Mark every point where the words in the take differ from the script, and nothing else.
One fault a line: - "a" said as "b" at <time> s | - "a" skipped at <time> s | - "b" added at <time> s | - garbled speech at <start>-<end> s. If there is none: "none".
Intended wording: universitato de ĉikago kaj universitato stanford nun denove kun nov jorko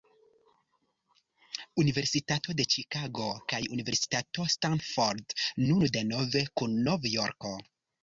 none